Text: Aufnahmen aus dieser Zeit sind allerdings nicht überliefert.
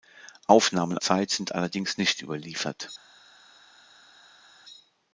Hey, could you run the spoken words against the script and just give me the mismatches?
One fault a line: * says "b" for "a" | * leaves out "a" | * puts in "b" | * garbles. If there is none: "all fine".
* leaves out "aus dieser"